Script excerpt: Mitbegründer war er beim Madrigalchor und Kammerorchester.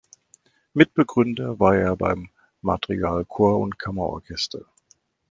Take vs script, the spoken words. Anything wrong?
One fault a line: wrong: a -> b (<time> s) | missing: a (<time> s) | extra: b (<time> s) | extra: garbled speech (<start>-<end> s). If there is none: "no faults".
no faults